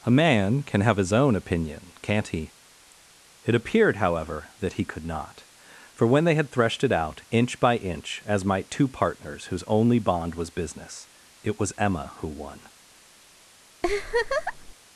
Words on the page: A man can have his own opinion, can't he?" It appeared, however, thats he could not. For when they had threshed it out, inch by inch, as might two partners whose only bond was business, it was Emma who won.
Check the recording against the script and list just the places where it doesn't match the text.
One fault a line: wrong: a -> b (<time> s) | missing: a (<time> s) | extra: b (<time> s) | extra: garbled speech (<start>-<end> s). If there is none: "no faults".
wrong: thats -> that (4.6 s)